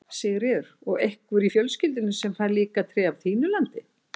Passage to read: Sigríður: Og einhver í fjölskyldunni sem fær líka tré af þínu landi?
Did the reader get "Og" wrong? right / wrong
right